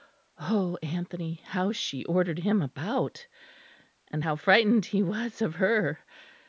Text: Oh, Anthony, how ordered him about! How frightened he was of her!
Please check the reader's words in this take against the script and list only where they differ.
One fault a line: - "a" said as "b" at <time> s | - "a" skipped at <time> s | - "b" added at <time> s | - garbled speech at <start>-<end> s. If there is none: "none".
- "she" added at 1.7 s
- "And" added at 4.1 s